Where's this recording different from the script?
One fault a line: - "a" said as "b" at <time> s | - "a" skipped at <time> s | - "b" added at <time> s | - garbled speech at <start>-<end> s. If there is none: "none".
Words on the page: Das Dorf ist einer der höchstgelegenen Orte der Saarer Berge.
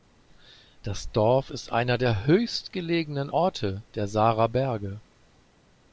none